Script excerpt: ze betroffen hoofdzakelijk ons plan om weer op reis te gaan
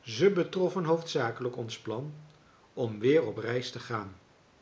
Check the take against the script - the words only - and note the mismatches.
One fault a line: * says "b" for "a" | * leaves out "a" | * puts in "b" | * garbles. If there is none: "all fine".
all fine